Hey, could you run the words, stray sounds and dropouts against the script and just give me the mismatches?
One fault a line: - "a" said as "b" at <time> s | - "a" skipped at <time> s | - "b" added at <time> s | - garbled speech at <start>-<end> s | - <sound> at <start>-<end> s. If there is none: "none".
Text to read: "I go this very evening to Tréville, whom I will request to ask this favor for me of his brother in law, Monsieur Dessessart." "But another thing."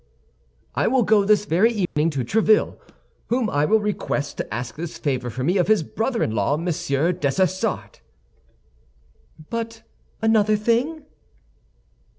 - "will" added at 0.9 s
- dropout at 1.9-2.0 s